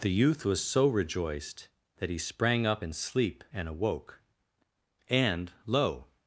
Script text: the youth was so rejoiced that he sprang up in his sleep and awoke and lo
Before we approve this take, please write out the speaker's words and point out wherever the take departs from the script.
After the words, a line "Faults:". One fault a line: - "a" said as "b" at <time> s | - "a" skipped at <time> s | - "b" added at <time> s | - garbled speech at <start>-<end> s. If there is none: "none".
the youth was so rejoiced that he sprang up in sleep and awoke and lo
Faults:
- "his" skipped at 2.9 s